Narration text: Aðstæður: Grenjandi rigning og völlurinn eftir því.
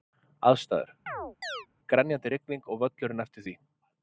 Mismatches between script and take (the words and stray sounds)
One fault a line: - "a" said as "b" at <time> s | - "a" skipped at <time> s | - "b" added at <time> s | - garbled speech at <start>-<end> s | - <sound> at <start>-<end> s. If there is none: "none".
- chirp at 1.1-1.7 s